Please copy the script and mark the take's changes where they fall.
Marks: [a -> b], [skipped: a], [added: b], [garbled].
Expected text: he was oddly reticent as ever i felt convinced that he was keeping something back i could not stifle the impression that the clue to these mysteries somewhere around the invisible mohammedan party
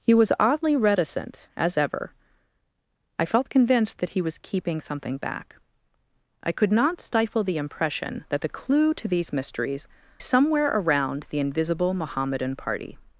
he was oddly reticent as ever i felt convinced that he was keeping something back i could not stifle the impression that the clue to these mysteries somewhere around the invisible mohammedan party